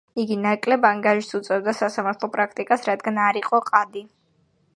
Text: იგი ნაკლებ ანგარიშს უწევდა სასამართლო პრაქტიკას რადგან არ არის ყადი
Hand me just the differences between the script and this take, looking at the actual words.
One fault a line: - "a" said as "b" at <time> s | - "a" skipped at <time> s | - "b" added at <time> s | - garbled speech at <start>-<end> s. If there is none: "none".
- "არის" said as "იყო" at 3.4 s